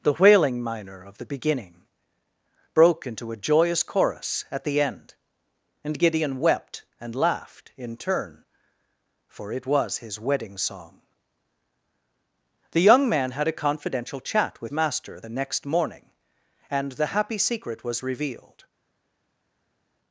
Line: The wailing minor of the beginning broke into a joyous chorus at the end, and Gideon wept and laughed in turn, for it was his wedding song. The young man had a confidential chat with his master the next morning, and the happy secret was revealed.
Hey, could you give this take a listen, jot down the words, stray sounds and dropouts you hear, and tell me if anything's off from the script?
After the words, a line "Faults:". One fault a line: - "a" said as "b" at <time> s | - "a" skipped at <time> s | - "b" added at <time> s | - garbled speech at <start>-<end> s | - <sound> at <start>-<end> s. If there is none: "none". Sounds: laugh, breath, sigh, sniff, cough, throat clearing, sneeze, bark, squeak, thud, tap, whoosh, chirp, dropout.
The wailing minor of the beginning broke into a joyous chorus at the end, and Gideon wept and laughed in turn, for it was his wedding song. The young man had a confidential chat with master the next morning, and the happy secret was revealed.
Faults:
- "his" skipped at 14.7 s